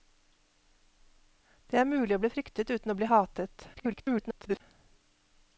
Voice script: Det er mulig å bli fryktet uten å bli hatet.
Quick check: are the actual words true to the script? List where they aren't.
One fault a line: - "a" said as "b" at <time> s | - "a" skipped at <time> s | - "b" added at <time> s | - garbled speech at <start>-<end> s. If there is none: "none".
- garbled speech at 3.7-4.6 s